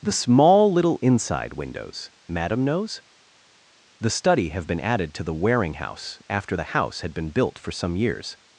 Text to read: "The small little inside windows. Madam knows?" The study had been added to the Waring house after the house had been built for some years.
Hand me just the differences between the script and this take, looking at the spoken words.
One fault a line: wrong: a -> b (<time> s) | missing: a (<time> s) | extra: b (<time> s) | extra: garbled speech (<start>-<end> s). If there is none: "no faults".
wrong: had -> have (4.5 s)